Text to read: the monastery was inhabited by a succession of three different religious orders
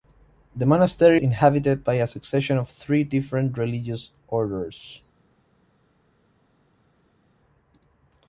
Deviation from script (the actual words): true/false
true